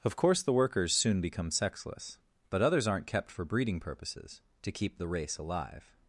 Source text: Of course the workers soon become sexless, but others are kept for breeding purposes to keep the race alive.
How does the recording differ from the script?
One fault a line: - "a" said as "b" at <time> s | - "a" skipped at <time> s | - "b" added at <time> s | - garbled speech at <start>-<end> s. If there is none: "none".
- "are" said as "aren't" at 2.9 s